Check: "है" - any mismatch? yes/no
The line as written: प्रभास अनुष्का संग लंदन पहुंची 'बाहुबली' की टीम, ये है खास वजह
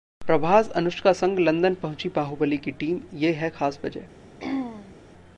no